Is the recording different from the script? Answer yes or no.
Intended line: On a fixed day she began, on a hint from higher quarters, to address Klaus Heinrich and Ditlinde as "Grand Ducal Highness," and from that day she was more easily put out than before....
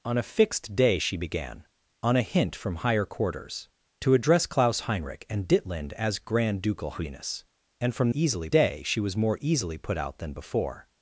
yes